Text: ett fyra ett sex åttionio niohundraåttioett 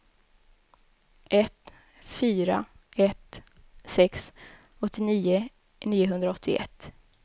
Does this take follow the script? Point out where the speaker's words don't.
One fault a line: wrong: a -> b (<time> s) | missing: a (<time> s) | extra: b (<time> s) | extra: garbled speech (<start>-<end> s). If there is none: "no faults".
no faults